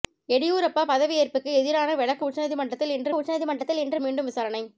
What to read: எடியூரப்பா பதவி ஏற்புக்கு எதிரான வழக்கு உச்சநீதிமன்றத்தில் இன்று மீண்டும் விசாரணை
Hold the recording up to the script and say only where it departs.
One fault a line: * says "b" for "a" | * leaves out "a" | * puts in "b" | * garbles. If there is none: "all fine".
* puts in "உச்சநீதிமன்றத்தில் இன்று"